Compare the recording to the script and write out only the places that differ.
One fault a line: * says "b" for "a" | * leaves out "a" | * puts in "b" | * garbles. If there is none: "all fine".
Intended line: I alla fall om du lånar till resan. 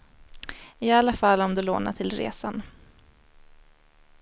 all fine